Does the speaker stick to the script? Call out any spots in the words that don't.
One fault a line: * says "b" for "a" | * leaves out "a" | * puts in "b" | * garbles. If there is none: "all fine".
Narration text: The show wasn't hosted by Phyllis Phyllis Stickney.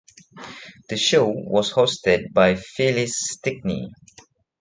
* says "was" for "wasn't"
* leaves out "Phyllis"